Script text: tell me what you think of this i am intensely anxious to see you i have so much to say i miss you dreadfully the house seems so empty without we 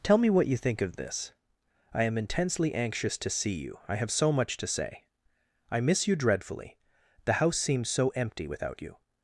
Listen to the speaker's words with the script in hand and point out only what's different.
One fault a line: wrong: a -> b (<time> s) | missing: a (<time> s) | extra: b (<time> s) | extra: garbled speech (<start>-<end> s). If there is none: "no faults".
wrong: we -> you (8.8 s)